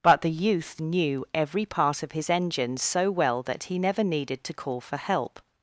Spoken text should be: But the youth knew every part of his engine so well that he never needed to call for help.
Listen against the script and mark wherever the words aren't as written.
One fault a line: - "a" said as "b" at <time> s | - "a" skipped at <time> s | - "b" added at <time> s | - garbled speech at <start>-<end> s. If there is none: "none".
none